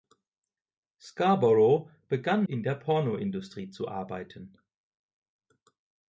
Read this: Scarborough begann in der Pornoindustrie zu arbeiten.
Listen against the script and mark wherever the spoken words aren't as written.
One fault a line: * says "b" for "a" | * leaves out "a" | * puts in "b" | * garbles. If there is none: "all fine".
all fine